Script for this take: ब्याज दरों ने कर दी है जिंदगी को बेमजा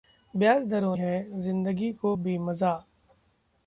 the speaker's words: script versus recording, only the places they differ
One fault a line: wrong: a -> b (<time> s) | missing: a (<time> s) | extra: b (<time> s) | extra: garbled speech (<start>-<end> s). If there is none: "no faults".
missing: ने कर दी (0.9 s)